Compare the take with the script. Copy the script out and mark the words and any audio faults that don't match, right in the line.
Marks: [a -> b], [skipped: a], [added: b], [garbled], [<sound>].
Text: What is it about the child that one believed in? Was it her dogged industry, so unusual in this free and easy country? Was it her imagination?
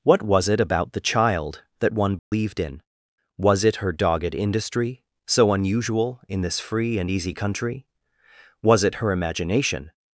What [is -> was] it about the child that one believed [dropout] in? Was it her dogged industry, so unusual in this free and easy country? Was it her imagination?